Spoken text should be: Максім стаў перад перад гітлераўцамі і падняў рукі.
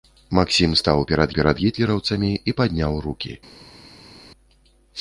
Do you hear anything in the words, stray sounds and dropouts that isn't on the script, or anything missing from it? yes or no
no